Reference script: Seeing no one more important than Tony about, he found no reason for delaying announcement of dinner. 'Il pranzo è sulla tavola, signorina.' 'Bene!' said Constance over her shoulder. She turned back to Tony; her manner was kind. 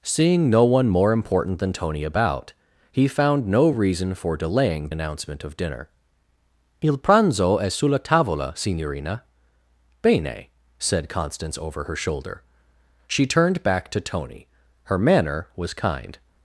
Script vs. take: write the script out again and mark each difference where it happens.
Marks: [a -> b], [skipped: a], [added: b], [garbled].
Seeing no one more important than Tony about, he found no reason for delaying announcement of dinner. 'Il pranzo è sulla tavola, signorina.' 'Bene!' said Constance over her shoulder. She turned back to Tony; her manner was kind.